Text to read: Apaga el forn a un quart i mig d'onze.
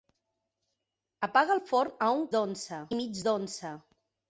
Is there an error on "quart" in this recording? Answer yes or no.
yes